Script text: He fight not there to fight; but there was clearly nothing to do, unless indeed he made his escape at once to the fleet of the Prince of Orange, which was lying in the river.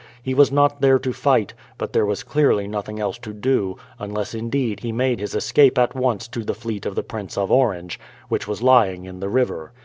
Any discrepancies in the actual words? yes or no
yes